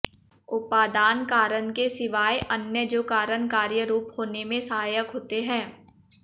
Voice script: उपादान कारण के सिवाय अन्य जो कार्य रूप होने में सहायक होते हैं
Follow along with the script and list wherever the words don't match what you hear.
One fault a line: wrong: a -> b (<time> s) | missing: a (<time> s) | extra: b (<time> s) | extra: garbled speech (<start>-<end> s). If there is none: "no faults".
extra: कारण (3.0 s)